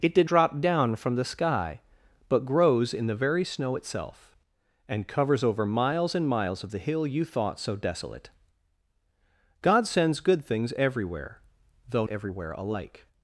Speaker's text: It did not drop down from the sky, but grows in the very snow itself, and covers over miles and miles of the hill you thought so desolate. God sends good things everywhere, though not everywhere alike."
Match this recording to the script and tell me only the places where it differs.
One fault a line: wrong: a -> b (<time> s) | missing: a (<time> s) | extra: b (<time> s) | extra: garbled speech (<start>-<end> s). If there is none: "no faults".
missing: not (0.3 s)
missing: not (12.1 s)